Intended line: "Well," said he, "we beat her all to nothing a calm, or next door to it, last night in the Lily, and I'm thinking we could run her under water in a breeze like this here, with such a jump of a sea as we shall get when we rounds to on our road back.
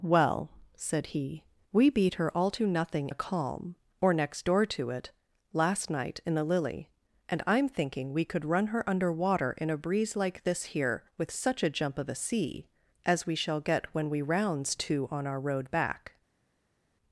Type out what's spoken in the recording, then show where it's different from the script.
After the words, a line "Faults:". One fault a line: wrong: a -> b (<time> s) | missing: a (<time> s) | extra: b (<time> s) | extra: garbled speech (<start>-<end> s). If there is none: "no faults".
"Well," said he, "we beat her all to nothing a calm, or next door to it, last night in the Lily, and I'm thinking we could run her under water in a breeze like this here, with such a jump of a sea as we shall get when we rounds to on our road back.
Faults:
no faults